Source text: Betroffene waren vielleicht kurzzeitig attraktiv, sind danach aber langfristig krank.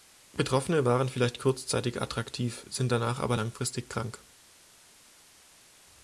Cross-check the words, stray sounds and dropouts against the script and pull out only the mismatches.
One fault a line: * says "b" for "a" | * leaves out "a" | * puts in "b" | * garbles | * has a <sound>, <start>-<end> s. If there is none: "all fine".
all fine